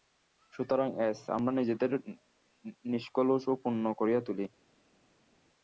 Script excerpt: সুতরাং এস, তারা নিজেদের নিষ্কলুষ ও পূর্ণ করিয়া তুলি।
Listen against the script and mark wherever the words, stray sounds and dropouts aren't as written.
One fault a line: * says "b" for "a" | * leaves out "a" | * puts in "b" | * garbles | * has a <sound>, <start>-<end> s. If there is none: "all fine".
* says "আমরা" for "তারা"